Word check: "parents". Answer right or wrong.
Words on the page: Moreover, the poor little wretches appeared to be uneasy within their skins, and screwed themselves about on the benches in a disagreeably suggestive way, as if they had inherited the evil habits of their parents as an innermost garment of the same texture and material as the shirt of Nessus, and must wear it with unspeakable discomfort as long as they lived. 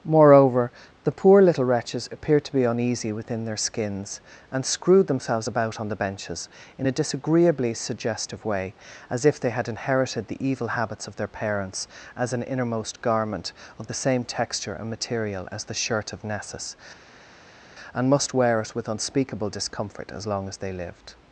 right